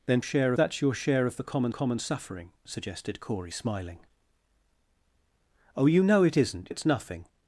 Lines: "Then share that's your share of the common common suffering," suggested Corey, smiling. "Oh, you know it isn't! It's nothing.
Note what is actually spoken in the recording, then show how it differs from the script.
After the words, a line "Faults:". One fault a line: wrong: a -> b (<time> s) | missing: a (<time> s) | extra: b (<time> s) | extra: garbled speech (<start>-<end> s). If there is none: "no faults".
"Then share that's your share of the common common suffering," suggested Corey, smiling. "Oh, you know it isn't! It's nothing.
Faults:
no faults